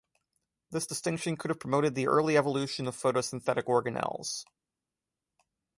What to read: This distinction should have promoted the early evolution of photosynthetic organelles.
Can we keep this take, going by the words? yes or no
no